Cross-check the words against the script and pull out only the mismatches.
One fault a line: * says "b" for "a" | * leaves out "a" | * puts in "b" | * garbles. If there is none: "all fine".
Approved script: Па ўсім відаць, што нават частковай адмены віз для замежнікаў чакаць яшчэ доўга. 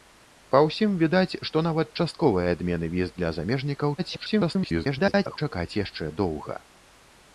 * garbles